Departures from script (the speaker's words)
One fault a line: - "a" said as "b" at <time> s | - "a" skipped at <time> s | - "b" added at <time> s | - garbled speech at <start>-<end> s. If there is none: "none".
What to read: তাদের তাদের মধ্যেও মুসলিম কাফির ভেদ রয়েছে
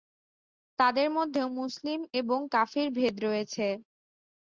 - "তাদের" skipped at 1.1 s
- "এবং" added at 2.2 s